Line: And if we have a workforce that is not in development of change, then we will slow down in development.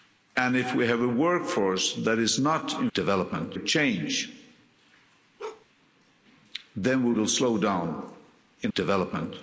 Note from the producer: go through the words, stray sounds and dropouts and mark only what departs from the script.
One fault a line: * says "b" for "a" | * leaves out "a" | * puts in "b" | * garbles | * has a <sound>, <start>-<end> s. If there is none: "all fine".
* has a bark, 5.4-5.7 s